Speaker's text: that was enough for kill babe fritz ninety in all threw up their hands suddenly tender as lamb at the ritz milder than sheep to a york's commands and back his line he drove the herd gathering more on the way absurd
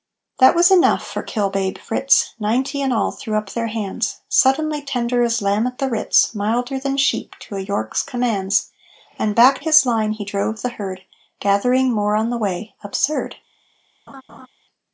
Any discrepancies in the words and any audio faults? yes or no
yes